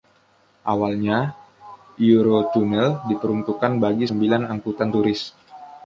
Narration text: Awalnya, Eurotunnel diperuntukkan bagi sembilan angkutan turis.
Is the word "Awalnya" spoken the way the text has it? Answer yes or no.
yes